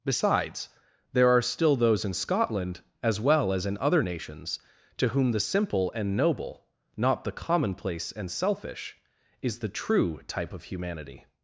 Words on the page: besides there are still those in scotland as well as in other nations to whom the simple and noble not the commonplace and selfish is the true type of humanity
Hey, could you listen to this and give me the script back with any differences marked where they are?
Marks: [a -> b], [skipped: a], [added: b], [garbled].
besides there are still those in scotland as well as in other nations to whom the simple and noble not the commonplace and selfish is the true type of humanity